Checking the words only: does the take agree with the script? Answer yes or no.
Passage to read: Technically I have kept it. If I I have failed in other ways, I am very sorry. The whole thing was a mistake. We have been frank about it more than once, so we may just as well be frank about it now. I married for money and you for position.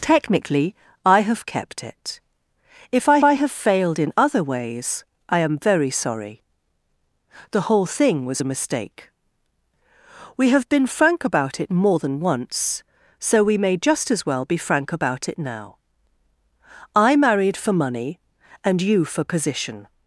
yes